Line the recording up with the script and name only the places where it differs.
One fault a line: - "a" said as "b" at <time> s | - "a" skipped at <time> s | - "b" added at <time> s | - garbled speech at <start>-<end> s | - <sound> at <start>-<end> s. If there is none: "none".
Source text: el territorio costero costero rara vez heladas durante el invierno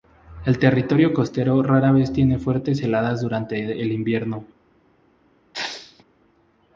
- "costero" skipped at 1.6 s
- "tiene fuertes" added at 2.1 s
- sneeze at 5.5-6.0 s